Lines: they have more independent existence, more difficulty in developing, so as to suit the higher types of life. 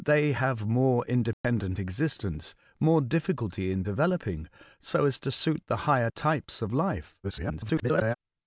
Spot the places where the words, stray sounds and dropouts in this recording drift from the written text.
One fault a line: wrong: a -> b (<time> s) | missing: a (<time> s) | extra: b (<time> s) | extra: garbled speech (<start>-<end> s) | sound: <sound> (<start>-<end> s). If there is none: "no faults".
sound: dropout (1.3-1.4 s)
extra: garbled speech (7.2-8.1 s)